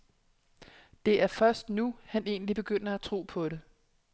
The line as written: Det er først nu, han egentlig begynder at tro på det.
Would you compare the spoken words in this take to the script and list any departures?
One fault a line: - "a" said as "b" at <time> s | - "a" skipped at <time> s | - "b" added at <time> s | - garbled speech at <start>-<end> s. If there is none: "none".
none